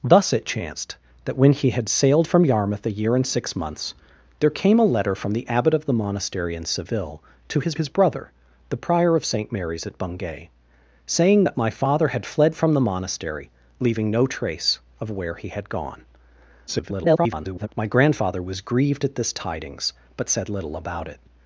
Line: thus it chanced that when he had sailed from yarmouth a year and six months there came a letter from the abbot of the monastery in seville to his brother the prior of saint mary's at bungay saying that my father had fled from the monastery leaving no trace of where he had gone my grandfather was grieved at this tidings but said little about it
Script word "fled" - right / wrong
right